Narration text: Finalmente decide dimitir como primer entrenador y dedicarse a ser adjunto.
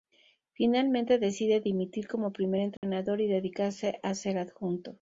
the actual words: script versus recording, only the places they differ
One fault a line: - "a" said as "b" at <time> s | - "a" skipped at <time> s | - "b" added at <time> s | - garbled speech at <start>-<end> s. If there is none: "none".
none